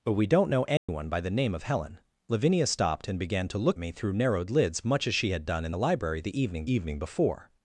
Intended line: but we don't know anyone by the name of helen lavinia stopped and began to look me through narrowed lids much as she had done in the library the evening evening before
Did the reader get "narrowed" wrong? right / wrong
right